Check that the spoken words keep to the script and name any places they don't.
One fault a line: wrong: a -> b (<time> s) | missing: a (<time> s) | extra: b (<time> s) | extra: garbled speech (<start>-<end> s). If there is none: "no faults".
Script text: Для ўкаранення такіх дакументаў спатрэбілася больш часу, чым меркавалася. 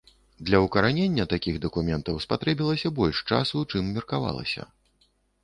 no faults